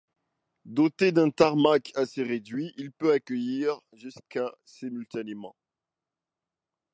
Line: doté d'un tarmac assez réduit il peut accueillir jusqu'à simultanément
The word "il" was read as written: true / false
true